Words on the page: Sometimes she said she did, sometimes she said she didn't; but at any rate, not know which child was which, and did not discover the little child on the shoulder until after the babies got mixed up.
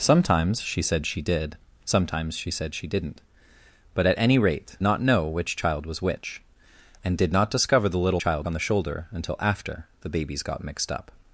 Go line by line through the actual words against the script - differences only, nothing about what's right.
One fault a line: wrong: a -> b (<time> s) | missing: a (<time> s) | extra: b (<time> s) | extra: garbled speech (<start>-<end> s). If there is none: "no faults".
no faults